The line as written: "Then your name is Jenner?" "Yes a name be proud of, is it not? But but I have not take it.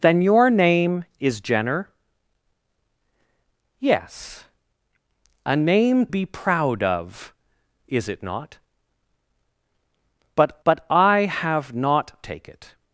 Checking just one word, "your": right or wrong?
right